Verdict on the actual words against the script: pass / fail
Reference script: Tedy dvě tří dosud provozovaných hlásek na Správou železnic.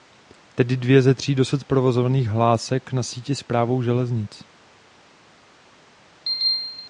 fail